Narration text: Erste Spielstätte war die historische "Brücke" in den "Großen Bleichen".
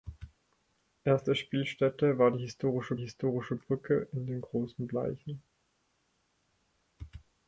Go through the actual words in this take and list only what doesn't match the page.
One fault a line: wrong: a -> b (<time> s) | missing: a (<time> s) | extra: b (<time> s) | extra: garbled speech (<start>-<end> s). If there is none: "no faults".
extra: historische (3.0 s)